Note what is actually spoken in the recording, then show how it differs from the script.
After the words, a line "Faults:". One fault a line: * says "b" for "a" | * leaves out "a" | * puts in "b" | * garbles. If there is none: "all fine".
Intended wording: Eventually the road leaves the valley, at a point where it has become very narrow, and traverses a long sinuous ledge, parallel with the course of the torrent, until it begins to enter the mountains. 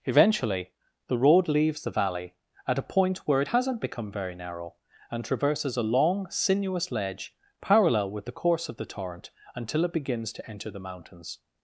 Eventually the road leaves the valley, at a point where it hasn't become very narrow, and traverses a long sinuous ledge, parallel with the course of the torrent, until it begins to enter the mountains.
Faults:
* says "hasn't" for "has"